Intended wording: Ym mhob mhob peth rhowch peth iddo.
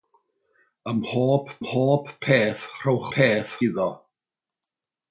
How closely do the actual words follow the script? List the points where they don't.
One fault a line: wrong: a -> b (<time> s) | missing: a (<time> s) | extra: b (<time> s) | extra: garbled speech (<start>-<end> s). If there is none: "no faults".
no faults